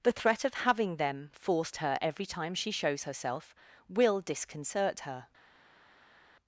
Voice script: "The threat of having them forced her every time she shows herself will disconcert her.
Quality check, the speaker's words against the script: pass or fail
pass